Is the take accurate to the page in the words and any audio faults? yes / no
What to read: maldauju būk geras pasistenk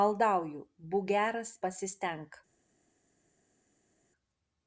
yes